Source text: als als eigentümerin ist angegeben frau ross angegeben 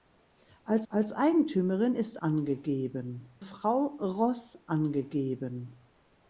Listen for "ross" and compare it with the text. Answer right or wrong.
right